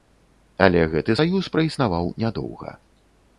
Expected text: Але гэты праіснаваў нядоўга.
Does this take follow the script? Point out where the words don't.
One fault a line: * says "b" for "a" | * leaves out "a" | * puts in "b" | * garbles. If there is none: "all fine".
* puts in "саюз"